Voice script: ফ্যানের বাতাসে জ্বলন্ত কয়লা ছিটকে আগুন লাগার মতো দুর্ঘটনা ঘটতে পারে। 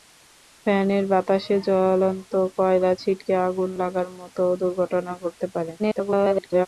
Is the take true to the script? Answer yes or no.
no